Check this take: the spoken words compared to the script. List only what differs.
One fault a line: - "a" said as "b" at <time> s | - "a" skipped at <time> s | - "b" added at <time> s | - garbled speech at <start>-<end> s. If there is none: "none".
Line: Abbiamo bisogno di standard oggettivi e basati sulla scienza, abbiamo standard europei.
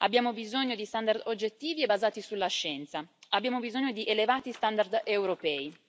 - "bisogno di elevati" added at 3.6 s